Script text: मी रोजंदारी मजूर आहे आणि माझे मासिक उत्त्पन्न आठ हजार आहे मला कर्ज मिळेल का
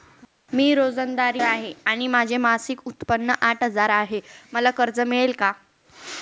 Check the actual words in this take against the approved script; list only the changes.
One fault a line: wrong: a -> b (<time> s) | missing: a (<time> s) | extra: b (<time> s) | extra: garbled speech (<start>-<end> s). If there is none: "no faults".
missing: मजूर (1.4 s)